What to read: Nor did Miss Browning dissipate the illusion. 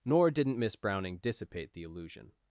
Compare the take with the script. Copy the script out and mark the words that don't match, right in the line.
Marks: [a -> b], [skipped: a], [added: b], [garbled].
Nor [did -> didn't] Miss Browning dissipate the illusion.